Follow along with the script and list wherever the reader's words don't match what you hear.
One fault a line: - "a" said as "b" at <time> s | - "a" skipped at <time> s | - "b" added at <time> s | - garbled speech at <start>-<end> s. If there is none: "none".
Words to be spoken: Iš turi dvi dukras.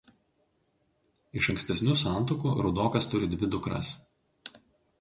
- "ankstesnių santuokų Rudokas" added at 1.5 s